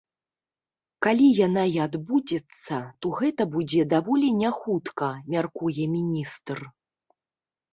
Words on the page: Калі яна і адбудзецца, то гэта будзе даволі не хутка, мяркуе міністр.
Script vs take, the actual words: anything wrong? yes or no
no